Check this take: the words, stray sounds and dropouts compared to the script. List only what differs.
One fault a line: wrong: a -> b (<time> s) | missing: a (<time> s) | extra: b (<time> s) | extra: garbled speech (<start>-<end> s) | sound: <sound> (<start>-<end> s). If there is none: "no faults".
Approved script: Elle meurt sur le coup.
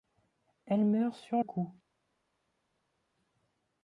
missing: le (1.4 s)